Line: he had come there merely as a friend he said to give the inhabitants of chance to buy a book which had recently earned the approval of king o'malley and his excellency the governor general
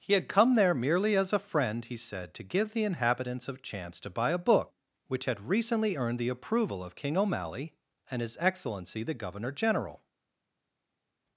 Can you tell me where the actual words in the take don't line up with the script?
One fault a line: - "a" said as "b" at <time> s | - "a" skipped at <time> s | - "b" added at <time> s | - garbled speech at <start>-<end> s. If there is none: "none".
none